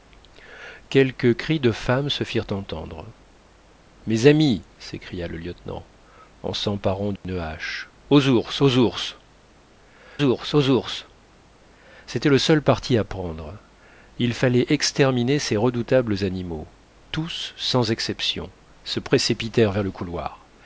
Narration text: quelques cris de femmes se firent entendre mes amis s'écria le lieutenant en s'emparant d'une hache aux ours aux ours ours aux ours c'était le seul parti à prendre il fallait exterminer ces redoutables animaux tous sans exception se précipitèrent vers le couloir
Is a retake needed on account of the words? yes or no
no